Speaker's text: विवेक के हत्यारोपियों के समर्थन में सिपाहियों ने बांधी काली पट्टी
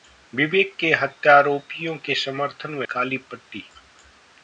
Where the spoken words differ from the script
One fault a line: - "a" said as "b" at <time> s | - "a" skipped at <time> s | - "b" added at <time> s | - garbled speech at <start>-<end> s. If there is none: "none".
- "सिपाहियों ने बांधी" skipped at 2.9 s